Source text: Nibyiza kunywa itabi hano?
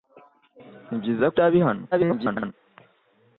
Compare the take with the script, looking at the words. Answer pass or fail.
fail